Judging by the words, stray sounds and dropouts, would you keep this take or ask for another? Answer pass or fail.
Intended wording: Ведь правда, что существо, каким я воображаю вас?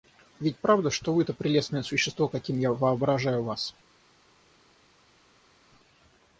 fail